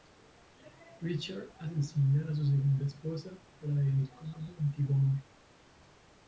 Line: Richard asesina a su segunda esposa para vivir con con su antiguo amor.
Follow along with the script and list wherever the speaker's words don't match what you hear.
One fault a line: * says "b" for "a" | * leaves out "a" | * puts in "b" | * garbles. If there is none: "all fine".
all fine